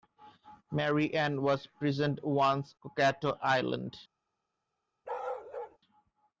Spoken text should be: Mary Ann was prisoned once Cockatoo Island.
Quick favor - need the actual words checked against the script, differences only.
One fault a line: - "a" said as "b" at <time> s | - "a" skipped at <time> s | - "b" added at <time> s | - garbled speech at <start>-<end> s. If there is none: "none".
none